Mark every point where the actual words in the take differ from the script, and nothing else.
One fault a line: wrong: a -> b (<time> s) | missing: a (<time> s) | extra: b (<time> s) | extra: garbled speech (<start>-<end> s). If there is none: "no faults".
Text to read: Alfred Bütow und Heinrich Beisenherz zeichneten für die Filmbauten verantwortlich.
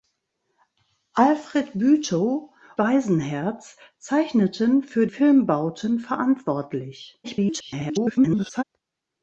missing: und Heinrich (2.5 s)
missing: die (5.1 s)
extra: garbled speech (7.2-8.6 s)